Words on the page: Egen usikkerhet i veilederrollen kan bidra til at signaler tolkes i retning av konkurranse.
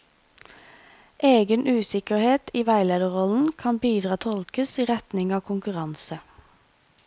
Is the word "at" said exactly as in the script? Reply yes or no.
no